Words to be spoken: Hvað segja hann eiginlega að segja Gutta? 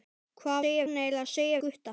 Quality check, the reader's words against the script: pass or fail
pass